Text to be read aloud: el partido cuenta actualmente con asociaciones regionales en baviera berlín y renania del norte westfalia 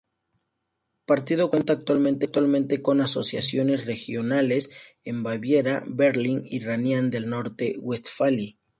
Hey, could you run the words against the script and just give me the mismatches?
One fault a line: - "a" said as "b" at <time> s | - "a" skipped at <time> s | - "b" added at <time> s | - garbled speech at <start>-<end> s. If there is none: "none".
none